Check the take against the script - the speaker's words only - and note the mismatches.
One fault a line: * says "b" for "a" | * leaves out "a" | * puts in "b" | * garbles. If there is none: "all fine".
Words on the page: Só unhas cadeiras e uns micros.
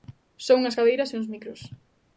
all fine